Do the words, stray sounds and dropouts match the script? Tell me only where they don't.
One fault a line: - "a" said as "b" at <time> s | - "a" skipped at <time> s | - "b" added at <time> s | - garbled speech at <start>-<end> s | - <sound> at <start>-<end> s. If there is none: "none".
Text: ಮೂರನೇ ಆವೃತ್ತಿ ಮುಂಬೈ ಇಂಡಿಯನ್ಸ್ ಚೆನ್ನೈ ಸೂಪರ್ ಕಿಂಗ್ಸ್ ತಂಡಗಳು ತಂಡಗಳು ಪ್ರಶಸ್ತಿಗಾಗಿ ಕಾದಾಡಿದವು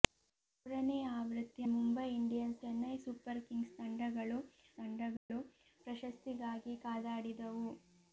- dropout at 5.2-5.3 s